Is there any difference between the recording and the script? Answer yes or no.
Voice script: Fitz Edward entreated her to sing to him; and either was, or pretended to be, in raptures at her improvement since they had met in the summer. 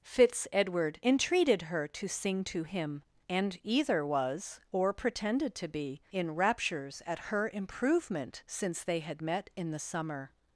no